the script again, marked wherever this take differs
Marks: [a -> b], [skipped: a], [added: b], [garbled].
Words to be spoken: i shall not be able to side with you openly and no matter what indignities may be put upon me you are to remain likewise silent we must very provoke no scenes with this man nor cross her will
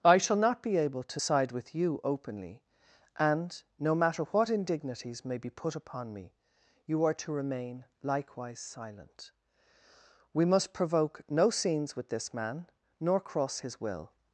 i shall not be able to side with you openly and no matter what indignities may be put upon me you are to remain likewise silent we must [skipped: very] provoke no scenes with this man nor cross [her -> his] will